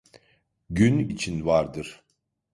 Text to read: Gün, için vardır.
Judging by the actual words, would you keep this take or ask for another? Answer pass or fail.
pass